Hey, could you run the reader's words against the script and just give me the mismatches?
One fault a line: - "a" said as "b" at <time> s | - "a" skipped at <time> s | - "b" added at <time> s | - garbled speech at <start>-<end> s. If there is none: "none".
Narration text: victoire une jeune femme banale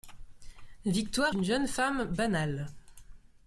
none